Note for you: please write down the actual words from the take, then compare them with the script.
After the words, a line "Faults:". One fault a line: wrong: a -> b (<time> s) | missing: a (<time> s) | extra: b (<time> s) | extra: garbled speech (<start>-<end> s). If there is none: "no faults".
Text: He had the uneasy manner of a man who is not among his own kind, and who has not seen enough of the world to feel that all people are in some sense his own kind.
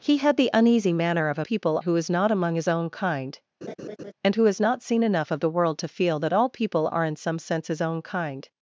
He had the uneasy manner of a people who is not among his own kind, and who has not seen enough of the world to feel that all people are in some sense his own kind.
Faults:
wrong: man -> people (1.4 s)